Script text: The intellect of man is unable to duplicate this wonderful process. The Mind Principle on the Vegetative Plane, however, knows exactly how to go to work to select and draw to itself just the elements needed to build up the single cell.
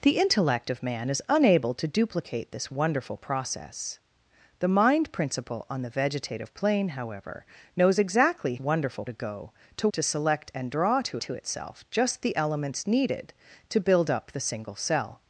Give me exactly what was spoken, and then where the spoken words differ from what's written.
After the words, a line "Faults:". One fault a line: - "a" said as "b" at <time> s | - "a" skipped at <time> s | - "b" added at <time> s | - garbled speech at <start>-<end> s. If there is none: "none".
The intellect of man is unable to duplicate this wonderful process. The Mind Principle on the Vegetative Plane, however, knows exactly wonderful to go to to select and draw to to itself just the elements needed to build up the single cell.
Faults:
- "how" said as "wonderful" at 8.6 s
- "work" skipped at 9.9 s
- "to" added at 11.2 s